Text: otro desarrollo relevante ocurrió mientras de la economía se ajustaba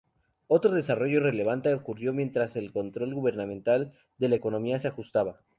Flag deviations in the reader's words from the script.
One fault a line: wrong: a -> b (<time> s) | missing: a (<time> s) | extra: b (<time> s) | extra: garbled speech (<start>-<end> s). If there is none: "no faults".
extra: el control gubernamental (2.5 s)